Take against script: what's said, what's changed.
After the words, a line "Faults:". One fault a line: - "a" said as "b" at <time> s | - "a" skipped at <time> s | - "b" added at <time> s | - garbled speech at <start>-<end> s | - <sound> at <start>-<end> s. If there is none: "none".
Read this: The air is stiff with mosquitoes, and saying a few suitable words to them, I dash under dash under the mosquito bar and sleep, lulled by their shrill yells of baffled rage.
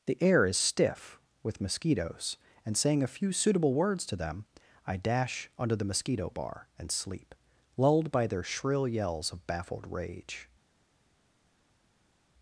The air is stiff with mosquitoes, and saying a few suitable words to them, I dash under the mosquito bar and sleep, lulled by their shrill yells of baffled rage.
Faults:
- "dash under" skipped at 5.8 s